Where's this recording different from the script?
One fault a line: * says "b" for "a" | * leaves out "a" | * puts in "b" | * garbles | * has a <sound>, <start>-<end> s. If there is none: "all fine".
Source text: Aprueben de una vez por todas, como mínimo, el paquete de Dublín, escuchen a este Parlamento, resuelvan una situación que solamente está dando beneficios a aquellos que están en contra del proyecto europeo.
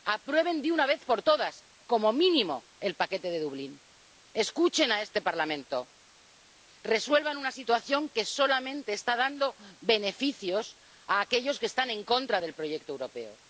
all fine